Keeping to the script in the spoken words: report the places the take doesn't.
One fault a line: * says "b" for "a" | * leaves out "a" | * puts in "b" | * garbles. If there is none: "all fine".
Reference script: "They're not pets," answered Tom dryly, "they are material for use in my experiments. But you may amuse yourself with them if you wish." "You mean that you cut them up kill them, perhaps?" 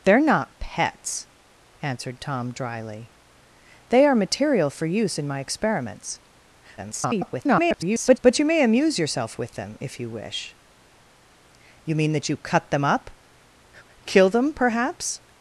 * garbles